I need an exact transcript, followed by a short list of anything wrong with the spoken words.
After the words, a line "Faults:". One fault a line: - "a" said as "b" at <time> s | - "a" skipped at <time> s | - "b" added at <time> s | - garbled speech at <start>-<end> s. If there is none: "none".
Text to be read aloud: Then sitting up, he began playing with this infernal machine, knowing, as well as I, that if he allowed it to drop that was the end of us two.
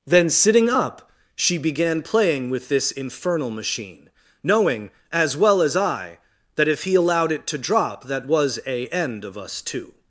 Then sitting up, she began playing with this infernal machine, knowing, as well as I, that if he allowed it to drop that was a end of us two.
Faults:
- "he" said as "she" at 1.4 s
- "the" said as "a" at 8.7 s